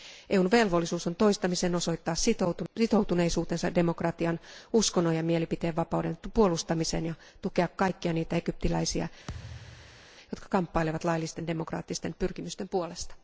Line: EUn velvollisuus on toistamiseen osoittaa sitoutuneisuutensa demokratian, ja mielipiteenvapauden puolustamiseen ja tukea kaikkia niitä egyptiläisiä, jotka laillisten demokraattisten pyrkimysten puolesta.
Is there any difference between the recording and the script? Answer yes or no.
yes